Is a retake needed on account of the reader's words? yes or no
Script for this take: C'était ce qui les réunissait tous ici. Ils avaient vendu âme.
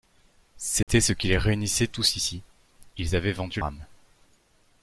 no